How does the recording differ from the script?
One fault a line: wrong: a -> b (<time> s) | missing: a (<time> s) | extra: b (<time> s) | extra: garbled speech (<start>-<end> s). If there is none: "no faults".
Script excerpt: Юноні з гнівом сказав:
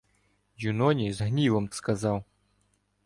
no faults